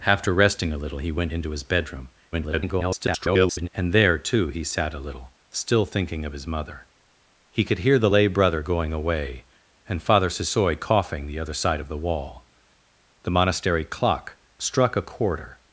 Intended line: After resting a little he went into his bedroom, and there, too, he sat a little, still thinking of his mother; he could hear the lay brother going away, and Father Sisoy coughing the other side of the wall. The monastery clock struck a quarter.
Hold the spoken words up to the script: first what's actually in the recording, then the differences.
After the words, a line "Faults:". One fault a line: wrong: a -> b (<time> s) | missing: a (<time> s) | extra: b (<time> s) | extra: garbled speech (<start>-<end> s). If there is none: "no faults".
After resting a little he went into his bedroom, [garbled] and there, too, he sat a little, still thinking of his mother; he could hear the lay brother going away, and Father Sisoy coughing the other side of the wall. The monastery clock struck a quarter.
Faults:
extra: garbled speech (2.3-3.7 s)